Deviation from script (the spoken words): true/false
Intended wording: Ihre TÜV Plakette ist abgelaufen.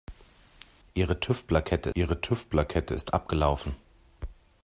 true